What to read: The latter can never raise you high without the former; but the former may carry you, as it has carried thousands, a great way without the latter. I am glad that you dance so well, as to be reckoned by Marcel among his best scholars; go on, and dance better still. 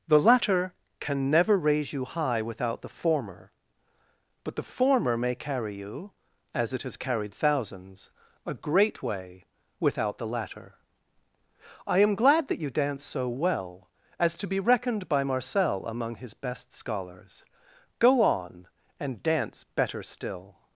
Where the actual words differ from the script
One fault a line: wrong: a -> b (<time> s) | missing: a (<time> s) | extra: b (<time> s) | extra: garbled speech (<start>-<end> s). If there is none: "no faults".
no faults